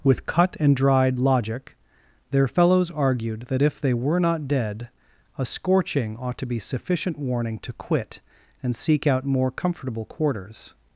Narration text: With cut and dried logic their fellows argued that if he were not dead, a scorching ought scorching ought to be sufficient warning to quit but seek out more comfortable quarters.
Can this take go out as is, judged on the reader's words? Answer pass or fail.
fail